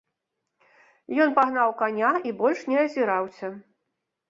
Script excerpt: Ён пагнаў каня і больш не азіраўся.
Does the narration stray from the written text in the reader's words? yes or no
no